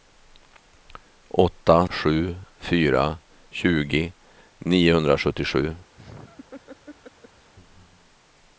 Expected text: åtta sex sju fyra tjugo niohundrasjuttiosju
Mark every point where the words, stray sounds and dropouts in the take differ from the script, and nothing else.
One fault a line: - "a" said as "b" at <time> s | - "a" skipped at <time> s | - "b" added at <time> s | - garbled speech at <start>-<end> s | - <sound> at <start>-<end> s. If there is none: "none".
- "sex" skipped at 1.9 s
- laugh at 6.0-7.5 s